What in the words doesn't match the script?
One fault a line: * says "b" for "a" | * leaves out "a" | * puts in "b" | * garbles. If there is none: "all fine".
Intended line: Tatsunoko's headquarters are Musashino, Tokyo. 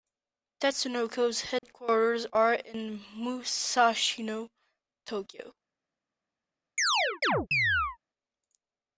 * puts in "in"